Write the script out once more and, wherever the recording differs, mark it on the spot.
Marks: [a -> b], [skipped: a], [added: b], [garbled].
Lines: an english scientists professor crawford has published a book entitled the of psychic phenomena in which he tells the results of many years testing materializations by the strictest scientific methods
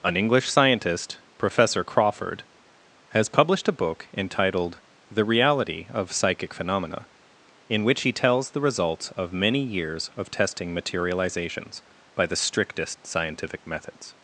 an english [scientists -> scientist] professor crawford has published a book entitled the [added: reality] of psychic phenomena in which he tells the results of many years [added: of] testing materializations by the strictest scientific methods